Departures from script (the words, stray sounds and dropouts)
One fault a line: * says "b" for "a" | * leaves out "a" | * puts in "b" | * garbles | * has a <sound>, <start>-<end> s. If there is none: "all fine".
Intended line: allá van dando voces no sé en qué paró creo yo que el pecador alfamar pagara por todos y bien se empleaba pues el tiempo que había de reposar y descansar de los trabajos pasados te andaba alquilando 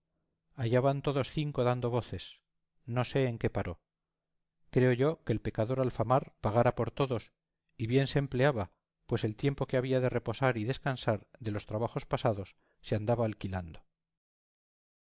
* puts in "todos cinco"
* says "se" for "te"